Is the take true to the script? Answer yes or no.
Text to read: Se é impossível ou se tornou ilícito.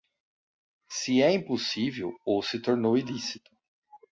yes